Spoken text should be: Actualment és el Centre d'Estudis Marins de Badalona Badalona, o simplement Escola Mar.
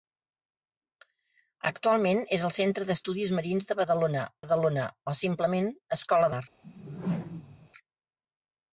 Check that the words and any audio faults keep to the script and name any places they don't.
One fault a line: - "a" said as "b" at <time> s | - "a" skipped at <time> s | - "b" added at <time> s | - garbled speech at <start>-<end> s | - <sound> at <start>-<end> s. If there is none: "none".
- whoosh at 6.6-7.7 s